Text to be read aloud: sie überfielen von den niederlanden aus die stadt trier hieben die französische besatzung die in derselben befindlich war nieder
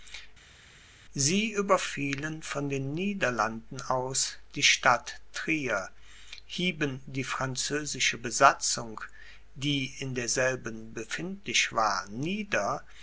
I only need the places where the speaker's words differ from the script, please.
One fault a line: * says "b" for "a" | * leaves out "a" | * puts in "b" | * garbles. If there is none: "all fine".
all fine